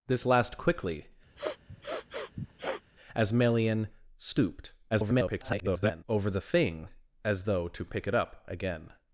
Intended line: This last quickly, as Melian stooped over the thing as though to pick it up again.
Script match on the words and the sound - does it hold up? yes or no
no